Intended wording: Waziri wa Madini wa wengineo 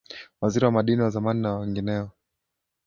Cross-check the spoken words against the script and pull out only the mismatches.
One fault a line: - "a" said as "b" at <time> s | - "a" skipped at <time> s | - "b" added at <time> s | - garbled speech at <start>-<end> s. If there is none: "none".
- "zamani na" added at 1.1 s